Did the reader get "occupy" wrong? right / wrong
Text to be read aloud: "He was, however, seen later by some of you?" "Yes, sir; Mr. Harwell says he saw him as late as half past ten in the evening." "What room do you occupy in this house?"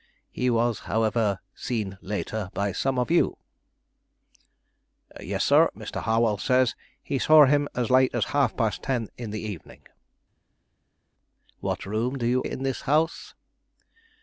wrong